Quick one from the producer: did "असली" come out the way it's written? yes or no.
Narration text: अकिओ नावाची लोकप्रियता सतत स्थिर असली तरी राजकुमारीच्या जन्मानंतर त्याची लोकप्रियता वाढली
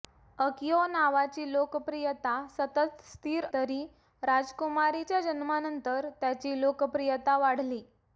no